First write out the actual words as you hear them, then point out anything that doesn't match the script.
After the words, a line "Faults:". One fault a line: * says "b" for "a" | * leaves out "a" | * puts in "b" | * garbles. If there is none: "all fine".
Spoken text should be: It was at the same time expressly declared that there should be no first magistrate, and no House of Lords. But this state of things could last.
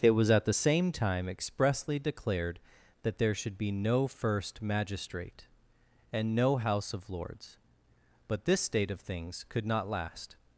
It was at the same time expressly declared that there should be no first magistrate, and no House of Lords. But this state of things could not last.
Faults:
* puts in "not"